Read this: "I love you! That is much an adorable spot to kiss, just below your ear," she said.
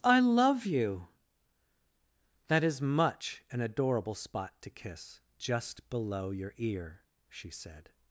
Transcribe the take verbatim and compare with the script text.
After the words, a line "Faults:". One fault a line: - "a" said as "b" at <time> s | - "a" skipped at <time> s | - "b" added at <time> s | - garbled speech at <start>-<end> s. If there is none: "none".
"I love you! That is much an adorable spot to kiss, just below your ear," she said.
Faults:
none